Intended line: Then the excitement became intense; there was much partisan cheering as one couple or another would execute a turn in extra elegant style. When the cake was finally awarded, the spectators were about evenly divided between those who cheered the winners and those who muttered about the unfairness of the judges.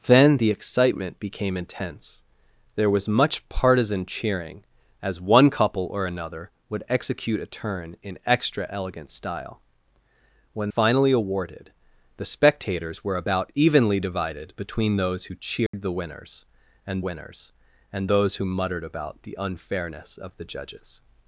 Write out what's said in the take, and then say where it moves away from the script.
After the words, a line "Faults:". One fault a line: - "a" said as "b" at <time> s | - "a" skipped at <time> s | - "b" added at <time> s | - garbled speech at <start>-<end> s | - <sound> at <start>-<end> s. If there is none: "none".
Then the excitement became intense; there was much partisan cheering as one couple or another would execute a turn in extra elegant style. When finally awarded, the spectators were about evenly divided between those who cheered the winners and winners and those who muttered about the unfairness of the judges.
Faults:
- "the cake was" skipped at 10.7 s
- dropout at 15.7-15.7 s
- "winners and" added at 17.0 s